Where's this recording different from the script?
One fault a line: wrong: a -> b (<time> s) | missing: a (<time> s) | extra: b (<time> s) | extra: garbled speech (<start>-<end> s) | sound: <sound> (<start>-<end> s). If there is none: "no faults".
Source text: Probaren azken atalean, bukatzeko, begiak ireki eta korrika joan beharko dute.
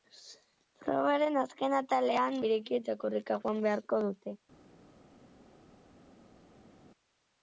missing: bukatzeko begiak (2.4 s)